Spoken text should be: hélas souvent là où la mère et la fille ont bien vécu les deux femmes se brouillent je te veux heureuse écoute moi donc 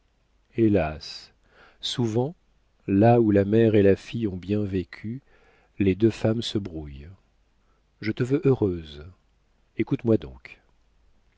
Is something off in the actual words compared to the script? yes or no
no